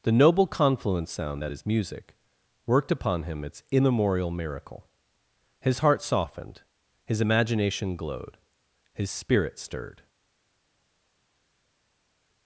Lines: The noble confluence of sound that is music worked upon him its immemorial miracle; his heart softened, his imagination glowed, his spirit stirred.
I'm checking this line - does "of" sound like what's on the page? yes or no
no